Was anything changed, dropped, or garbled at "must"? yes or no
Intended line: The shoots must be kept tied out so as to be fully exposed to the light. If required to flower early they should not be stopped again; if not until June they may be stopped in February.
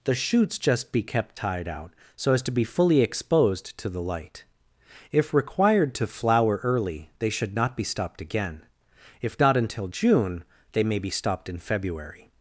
yes